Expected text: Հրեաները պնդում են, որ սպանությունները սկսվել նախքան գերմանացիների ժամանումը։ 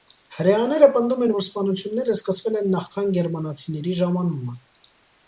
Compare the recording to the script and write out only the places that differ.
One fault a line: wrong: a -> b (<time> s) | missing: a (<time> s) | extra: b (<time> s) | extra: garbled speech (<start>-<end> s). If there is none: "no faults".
extra: են (2.6 s)